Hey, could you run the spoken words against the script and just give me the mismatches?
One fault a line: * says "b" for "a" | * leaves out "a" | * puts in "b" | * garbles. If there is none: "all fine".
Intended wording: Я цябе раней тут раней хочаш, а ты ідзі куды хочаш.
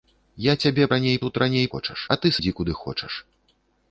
all fine